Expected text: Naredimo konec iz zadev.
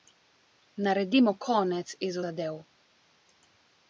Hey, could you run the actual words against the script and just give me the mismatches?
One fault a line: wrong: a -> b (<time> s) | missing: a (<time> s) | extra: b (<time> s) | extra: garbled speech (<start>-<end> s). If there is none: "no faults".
no faults